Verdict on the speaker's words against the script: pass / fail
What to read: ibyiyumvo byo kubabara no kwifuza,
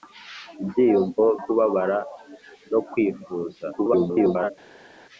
fail